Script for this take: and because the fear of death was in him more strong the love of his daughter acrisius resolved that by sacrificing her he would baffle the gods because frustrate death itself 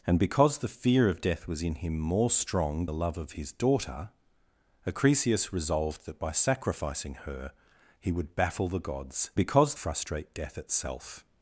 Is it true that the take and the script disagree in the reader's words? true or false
false